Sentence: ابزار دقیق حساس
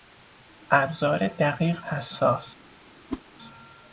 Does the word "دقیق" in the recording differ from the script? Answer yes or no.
no